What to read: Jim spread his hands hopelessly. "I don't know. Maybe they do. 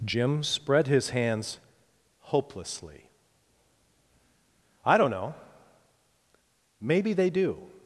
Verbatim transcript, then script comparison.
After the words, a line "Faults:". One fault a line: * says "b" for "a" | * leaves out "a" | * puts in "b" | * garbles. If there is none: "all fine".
Jim spread his hands hopelessly. "I don't know. Maybe they do.
Faults:
all fine